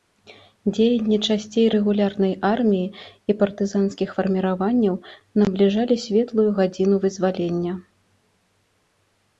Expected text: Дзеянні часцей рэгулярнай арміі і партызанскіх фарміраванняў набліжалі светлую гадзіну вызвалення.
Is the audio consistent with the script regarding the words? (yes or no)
yes